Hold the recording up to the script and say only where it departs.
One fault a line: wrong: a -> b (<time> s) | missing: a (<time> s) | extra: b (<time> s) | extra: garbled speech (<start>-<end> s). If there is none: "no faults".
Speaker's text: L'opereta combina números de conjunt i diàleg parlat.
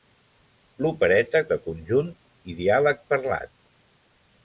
missing: combina números (1.4 s)